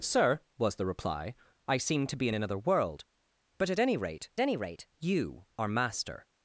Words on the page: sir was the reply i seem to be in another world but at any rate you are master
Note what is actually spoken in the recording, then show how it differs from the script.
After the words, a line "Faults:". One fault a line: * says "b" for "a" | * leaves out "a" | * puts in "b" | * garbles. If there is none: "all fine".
sir was the reply i seem to be in another world but at any rate any rate you are master
Faults:
* puts in "any rate"